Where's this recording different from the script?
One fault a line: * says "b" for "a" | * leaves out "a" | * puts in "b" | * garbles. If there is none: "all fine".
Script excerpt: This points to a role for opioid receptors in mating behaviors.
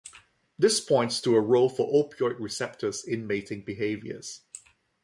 all fine